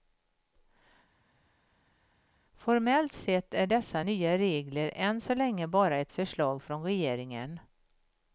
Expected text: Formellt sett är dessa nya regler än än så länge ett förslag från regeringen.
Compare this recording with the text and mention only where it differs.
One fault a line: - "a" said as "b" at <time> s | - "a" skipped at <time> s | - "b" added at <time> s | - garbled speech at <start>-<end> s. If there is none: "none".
- "än" skipped at 5.2 s
- "bara" added at 5.7 s